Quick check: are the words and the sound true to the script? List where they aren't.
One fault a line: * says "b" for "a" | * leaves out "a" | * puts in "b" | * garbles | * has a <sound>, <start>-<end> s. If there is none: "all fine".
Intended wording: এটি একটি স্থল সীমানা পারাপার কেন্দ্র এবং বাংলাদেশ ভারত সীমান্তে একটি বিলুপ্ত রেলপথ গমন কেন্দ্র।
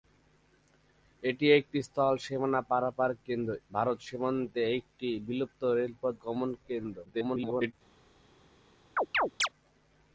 * leaves out "এবং বাংলাদেশ"
* garbles
* has a chirp, 9.0-9.5 s